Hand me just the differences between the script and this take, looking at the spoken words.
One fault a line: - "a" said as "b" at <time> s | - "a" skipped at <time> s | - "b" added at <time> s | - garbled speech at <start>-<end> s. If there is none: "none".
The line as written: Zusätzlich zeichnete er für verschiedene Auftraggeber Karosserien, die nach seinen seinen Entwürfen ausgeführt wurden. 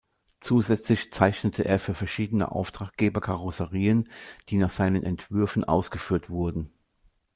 - "seinen" skipped at 5.0 s